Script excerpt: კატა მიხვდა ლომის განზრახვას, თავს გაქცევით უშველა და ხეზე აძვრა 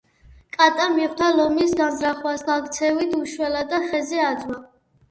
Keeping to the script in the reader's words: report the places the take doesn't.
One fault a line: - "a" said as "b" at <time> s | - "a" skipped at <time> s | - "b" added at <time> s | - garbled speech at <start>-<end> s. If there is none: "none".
- "თავს" skipped at 2.5 s